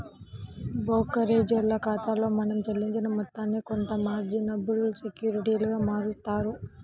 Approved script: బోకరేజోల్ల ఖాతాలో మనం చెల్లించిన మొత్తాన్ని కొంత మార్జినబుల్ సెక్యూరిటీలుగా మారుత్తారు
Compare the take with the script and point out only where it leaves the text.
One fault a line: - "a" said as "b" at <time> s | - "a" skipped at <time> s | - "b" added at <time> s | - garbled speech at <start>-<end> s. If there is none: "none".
none